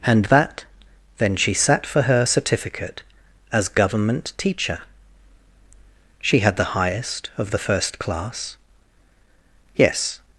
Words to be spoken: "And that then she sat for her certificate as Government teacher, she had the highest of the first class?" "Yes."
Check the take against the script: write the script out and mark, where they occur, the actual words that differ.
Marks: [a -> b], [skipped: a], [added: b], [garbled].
"And that then she sat for her certificate as Government teacher, she had the highest of the first class?" "Yes."